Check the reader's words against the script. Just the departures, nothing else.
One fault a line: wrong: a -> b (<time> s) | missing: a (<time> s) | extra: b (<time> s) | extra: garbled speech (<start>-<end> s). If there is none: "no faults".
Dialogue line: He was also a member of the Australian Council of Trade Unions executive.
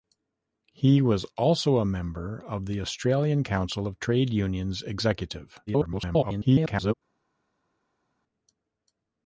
extra: garbled speech (5.7-6.9 s)